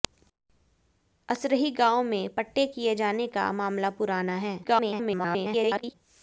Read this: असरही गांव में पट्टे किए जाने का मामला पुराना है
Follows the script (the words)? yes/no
no